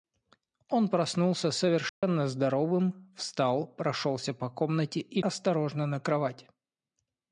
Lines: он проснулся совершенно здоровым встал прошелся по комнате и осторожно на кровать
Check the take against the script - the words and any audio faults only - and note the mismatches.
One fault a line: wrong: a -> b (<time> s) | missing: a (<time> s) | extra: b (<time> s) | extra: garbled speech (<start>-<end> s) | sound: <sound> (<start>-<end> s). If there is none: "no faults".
sound: dropout (1.9-2.0 s)